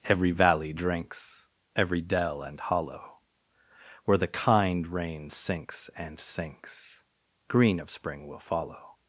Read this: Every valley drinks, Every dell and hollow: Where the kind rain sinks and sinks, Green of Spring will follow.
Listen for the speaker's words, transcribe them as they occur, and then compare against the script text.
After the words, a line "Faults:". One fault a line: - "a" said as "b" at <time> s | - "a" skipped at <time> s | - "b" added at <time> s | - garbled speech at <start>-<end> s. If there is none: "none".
Every valley drinks, Every dell and hollow: Where the kind rain sinks and sinks, Green of Spring will follow.
Faults:
none